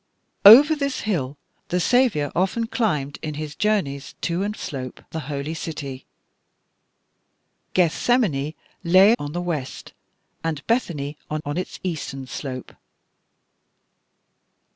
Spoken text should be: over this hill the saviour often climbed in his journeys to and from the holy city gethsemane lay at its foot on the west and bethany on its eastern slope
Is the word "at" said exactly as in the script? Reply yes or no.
no